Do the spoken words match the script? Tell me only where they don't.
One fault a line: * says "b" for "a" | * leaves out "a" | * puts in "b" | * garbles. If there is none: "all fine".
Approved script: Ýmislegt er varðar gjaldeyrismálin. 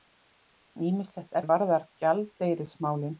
all fine